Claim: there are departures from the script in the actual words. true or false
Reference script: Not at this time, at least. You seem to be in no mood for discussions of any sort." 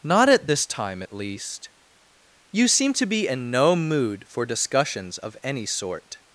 false